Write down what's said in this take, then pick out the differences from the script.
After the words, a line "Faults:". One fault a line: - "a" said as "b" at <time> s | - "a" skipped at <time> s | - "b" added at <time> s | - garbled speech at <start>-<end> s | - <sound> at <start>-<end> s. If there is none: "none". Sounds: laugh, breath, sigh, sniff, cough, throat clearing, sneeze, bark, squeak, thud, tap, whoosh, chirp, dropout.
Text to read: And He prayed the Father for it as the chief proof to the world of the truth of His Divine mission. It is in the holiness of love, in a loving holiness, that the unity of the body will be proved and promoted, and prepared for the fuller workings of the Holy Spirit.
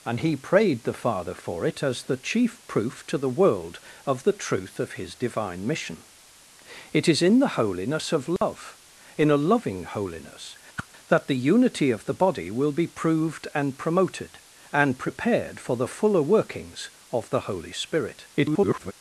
And He prayed the Father for it as the chief proof to the world of the truth of His Divine mission. It is in the holiness of love, in a loving holiness, that the unity of the body will be proved and promoted, and prepared for the fuller workings of the Holy Spirit. [garbled]
Faults:
- dropout at 8.4-8.4 s
- whoosh at 10.8-10.9 s
- garbled speech at 18.3-18.9 s